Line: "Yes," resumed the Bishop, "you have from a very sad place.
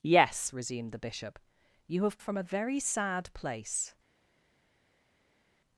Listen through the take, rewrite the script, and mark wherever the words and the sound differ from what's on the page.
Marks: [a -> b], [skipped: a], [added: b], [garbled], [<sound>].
"Yes," resumed the Bishop, "you have from a very sad place.